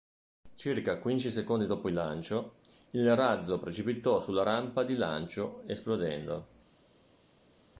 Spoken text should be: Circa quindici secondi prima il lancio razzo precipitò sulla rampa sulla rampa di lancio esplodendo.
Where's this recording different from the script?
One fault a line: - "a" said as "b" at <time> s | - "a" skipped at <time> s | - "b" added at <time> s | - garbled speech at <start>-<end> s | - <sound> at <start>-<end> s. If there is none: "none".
- "prima" said as "dopo" at 1.7 s
- "il" added at 2.9 s
- "sulla rampa" skipped at 4.8 s